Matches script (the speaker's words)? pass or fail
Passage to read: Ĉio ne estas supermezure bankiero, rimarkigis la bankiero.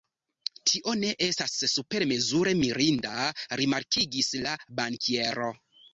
fail